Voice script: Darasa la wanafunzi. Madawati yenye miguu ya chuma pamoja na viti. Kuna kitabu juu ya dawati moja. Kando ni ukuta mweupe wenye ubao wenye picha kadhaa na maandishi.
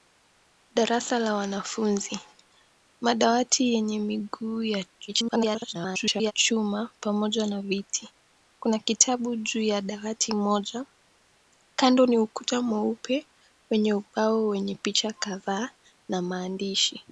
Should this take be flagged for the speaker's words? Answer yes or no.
yes